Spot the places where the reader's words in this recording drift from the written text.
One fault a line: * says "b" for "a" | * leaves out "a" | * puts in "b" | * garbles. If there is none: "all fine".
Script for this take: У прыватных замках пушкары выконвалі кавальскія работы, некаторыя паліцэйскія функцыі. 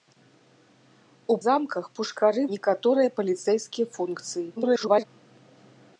* leaves out "прыватных"
* leaves out "выконвалі кавальскія работы"
* garbles